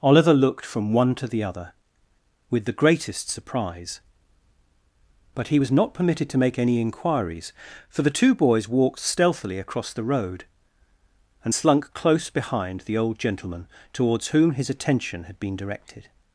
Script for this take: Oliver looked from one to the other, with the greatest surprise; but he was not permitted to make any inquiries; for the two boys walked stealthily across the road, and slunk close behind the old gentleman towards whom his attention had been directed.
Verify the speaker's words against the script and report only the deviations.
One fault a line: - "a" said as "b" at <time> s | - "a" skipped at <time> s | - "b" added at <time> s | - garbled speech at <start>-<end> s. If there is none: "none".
none